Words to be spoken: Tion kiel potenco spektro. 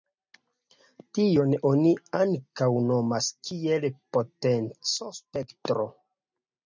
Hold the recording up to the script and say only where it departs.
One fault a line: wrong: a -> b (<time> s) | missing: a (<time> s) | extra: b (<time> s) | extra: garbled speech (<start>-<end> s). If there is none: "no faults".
extra: oni ankaŭ nomas (1.7 s)